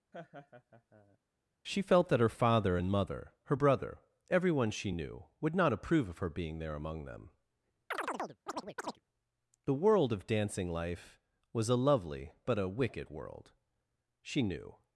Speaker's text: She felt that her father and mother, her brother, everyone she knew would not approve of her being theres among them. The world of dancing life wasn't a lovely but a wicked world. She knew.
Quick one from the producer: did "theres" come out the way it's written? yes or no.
no